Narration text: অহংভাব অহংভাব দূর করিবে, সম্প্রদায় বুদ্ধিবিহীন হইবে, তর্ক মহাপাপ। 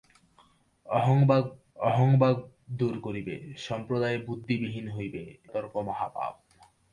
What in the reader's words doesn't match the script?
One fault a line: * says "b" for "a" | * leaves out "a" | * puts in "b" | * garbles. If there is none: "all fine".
all fine